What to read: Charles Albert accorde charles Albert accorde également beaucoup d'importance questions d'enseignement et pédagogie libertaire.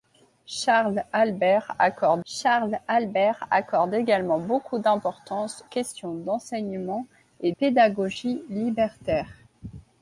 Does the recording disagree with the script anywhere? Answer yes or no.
no